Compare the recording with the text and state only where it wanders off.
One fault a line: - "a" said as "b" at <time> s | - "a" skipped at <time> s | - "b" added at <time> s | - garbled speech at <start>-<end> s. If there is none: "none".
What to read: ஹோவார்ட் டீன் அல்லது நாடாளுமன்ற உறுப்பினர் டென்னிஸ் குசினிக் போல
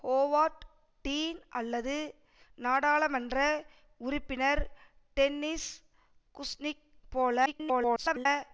- garbled speech at 7.5-8.3 s